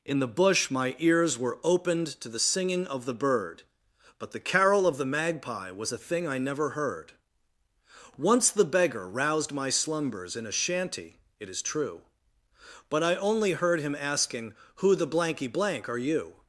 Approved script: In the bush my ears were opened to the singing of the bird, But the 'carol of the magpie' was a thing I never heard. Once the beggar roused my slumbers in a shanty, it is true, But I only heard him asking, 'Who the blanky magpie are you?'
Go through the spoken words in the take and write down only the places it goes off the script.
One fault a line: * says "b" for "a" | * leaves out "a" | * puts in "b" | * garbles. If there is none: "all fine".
* says "blank" for "magpie"